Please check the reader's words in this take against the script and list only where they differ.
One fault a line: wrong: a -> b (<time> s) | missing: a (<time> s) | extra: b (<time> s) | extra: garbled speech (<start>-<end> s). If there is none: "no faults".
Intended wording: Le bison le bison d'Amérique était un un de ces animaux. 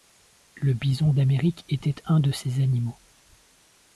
missing: le bison (1.1 s)
missing: un (2.2 s)